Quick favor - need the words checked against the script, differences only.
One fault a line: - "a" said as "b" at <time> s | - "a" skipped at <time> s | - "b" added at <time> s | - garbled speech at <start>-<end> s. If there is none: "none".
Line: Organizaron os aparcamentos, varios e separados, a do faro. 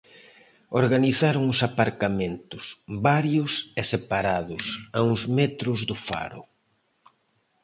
- "uns metros" added at 5.1 s